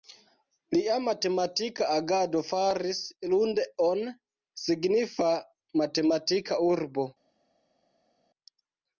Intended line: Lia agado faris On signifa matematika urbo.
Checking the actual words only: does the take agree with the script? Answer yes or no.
no